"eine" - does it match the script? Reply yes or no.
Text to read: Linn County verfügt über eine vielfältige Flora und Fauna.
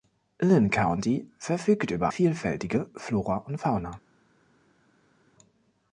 no